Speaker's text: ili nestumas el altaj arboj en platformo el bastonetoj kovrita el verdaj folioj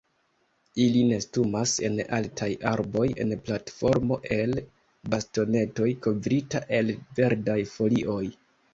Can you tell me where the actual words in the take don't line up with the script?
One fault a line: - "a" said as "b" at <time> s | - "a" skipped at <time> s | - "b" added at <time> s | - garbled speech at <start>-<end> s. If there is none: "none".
- "el" said as "en" at 1.9 s